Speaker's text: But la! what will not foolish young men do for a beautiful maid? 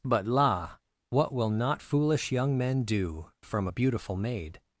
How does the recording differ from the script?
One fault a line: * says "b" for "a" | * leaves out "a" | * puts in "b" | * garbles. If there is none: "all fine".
* says "from" for "for"